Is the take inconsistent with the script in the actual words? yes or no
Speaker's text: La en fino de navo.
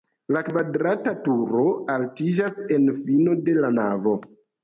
yes